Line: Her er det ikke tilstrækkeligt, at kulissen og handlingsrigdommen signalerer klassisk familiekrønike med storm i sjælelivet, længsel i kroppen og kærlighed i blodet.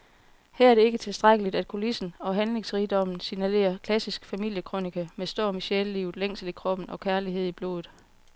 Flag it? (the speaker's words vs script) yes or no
no